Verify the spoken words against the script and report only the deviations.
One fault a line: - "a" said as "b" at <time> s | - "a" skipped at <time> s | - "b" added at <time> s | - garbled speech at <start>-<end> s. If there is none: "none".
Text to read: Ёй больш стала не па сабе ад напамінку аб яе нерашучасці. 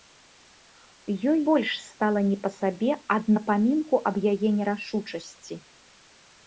none